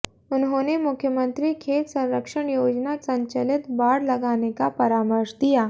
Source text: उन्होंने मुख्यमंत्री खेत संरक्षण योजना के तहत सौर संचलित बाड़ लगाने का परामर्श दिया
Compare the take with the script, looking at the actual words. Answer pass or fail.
fail